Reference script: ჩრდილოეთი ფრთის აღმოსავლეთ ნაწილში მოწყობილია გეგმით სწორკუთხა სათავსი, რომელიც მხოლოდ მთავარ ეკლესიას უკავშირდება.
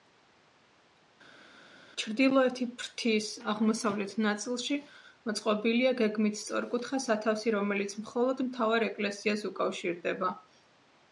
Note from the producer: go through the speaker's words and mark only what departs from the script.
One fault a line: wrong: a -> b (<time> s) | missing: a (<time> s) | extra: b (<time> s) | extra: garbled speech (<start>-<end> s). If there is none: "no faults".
no faults